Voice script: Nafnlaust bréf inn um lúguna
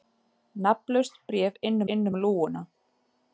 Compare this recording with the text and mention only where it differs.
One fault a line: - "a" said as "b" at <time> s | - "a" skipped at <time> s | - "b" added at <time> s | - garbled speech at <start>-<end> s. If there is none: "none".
- "inn" added at 1.9 s